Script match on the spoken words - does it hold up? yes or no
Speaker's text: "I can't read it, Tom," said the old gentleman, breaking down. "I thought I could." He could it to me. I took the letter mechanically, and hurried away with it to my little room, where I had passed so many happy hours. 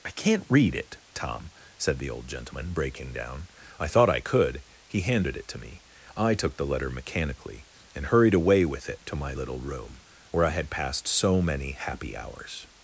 no